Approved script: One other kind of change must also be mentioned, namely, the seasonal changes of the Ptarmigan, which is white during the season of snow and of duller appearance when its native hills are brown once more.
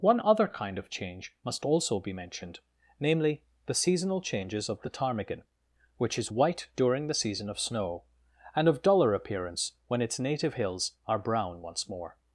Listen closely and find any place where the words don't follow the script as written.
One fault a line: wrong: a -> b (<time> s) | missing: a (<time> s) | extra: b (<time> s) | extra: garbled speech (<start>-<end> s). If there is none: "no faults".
no faults